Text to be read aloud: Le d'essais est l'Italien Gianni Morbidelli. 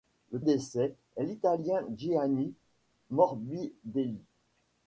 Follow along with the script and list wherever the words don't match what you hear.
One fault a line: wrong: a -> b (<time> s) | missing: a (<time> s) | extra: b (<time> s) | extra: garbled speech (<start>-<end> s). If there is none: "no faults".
no faults